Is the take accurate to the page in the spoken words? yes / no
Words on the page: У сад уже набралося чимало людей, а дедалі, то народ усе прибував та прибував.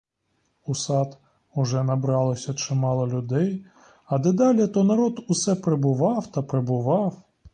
yes